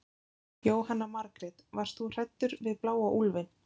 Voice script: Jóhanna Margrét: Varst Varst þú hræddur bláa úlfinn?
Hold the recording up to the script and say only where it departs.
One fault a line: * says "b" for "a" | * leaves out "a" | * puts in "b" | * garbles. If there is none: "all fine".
* leaves out "Varst"
* puts in "við"